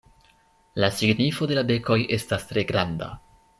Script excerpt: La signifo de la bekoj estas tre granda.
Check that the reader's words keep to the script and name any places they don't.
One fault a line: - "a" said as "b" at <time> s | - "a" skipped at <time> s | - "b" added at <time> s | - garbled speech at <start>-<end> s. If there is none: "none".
none